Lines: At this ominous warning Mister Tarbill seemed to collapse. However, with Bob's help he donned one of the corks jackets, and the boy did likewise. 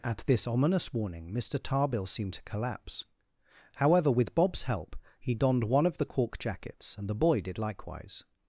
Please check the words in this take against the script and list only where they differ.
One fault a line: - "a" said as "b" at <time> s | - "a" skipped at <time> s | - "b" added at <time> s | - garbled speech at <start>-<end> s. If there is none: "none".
- "corks" said as "cork" at 6.1 s